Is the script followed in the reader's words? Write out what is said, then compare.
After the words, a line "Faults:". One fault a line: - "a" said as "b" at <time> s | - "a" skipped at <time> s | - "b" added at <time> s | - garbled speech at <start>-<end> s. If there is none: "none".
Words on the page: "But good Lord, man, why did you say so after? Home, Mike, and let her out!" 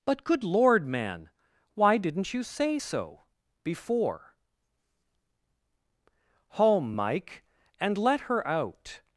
"But good Lord, man, why didn't you say so before? Home, Mike, and let her out!"
Faults:
- "did" said as "didn't" at 2.0 s
- "after" said as "before" at 3.6 s